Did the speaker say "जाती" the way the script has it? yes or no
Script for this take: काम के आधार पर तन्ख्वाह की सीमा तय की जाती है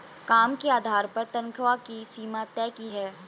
no